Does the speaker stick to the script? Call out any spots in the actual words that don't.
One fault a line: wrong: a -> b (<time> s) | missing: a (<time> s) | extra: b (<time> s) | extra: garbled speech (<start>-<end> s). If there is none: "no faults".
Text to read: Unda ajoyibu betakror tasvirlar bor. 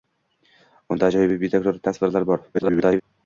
extra: garbled speech (2.5-3.0 s)